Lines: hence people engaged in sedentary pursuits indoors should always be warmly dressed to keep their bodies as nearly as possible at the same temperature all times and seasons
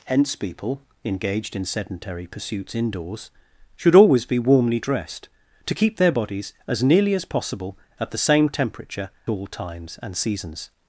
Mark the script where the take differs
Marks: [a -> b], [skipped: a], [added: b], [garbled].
hence people engaged in sedentary pursuits indoors should always be warmly dressed to keep their bodies as nearly as possible at the same temperature all times and seasons